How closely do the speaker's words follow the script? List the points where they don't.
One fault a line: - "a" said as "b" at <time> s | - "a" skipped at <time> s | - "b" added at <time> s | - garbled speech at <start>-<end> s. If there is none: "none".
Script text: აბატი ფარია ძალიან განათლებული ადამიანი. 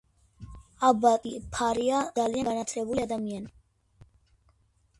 none